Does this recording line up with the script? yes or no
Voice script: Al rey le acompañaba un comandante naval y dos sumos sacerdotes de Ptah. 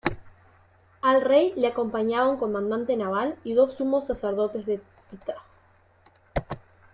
yes